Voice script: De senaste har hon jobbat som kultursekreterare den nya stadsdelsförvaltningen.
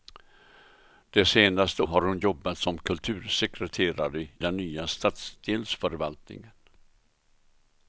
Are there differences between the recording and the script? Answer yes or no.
no